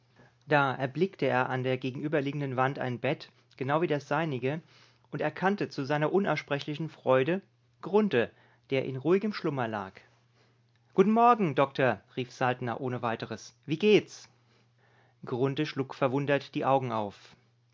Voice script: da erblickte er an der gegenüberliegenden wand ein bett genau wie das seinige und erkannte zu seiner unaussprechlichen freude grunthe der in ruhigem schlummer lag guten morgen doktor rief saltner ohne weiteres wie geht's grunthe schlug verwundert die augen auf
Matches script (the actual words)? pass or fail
pass